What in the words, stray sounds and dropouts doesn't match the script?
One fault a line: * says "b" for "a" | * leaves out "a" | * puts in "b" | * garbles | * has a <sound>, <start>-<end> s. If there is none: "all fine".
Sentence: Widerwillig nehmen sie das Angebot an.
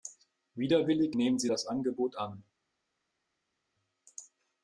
all fine